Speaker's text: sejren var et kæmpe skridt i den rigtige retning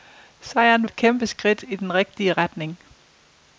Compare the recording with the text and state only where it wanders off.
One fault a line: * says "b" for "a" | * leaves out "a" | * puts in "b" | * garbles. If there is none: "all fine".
* leaves out "var"